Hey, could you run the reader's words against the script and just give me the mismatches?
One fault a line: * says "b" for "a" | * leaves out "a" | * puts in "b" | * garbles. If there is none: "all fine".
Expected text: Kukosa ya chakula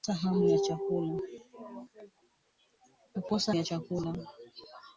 all fine